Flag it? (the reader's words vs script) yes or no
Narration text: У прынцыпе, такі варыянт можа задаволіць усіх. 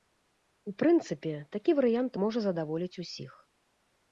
no